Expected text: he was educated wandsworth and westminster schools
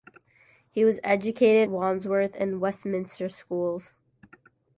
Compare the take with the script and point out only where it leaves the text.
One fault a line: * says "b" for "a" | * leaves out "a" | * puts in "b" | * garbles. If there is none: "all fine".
all fine